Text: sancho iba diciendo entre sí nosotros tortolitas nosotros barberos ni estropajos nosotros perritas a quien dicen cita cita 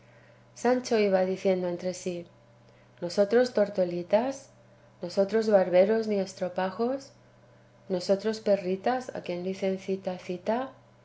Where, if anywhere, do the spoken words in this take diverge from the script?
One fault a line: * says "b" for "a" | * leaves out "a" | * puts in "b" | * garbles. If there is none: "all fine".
all fine